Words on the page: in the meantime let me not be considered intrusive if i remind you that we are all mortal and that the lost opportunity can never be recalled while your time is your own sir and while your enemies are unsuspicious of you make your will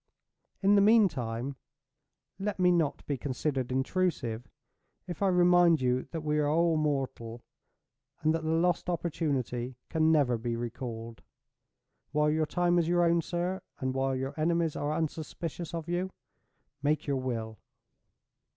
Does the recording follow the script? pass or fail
pass